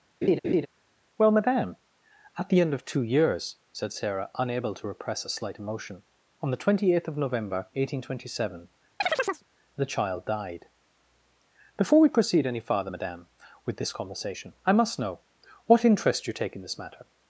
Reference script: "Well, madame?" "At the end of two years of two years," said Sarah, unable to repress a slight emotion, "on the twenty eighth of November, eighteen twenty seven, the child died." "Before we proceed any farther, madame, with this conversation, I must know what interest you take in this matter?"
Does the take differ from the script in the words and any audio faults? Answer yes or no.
yes